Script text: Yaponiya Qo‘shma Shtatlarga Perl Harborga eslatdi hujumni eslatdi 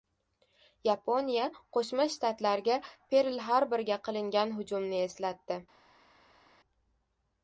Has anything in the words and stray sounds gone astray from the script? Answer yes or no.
yes